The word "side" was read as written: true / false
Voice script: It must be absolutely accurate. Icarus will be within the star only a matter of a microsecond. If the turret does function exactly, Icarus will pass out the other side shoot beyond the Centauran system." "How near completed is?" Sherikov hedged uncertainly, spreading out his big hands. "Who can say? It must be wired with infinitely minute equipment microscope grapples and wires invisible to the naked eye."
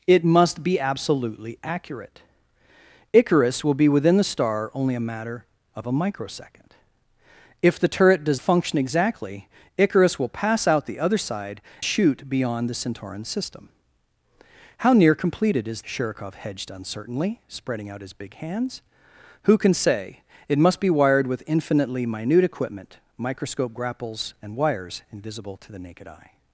true